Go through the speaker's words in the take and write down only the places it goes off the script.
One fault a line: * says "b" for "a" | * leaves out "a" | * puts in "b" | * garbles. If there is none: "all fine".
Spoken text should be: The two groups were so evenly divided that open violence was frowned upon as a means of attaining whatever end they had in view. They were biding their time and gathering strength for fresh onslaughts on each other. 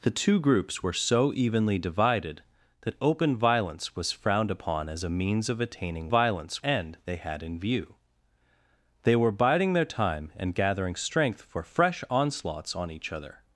* says "violence" for "whatever"